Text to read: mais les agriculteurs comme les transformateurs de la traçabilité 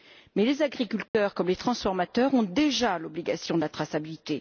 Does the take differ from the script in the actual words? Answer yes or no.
yes